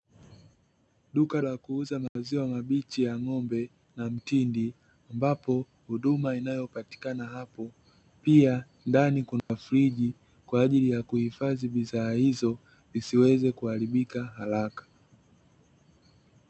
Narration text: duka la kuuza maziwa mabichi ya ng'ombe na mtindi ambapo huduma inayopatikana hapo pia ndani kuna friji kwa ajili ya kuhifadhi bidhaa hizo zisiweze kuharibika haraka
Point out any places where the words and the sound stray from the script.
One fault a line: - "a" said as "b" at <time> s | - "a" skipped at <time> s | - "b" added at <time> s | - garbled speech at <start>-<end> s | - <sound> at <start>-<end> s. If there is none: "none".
- dropout at 2.1-2.2 s
- dropout at 9.4-9.5 s